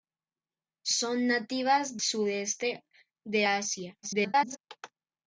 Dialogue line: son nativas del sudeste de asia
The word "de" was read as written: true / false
true